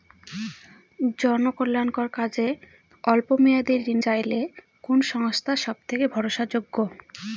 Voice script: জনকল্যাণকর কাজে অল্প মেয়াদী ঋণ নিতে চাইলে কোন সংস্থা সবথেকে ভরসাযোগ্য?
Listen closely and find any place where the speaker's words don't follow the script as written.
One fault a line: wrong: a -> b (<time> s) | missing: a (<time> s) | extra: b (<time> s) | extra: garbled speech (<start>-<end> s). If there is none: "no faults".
missing: নিতে (4.0 s)